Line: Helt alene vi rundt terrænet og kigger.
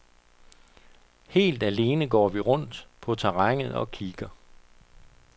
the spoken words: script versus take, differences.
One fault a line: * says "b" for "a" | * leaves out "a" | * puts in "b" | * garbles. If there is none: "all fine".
* puts in "går"
* puts in "på"